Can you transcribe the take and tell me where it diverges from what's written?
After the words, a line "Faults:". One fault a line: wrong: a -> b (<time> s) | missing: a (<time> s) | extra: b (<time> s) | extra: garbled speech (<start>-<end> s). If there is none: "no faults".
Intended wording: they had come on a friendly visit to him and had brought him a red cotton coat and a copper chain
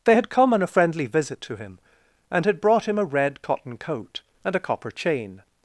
they had come on a friendly visit to him and had brought him a red cotton coat and a copper chain
Faults:
no faults